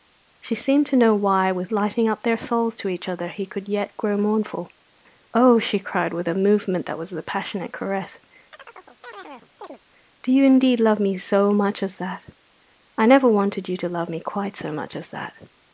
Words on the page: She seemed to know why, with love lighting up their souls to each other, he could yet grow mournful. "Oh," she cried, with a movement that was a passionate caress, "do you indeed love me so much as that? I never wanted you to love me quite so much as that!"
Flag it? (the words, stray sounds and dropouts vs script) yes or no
yes